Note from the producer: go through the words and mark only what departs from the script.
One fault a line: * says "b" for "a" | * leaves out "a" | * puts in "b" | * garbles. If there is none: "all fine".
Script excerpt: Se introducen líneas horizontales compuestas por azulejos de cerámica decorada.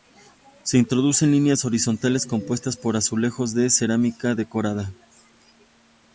all fine